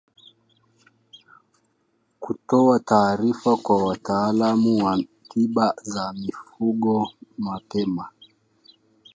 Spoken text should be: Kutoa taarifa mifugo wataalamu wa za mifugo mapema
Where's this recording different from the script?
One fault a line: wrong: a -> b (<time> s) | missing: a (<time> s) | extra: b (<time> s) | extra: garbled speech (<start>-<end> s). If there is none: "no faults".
wrong: mifugo -> kwa (3.6 s)
extra: tiba (5.3 s)